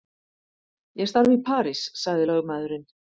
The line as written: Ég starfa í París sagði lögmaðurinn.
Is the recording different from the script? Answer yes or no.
no